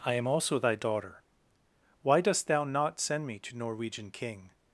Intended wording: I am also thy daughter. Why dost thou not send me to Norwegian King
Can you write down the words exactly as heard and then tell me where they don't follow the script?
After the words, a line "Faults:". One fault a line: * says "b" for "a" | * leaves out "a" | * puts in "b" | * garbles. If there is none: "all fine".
I am also thy daughter. Why dost thou not send me to Norwegian King
Faults:
all fine